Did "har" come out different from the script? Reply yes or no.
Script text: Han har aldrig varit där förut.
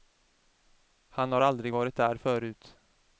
no